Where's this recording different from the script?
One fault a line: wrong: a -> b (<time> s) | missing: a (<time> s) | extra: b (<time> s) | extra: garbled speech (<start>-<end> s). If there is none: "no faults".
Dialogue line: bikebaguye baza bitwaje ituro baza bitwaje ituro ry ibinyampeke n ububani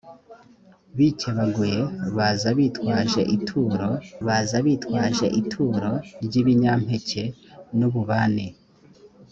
no faults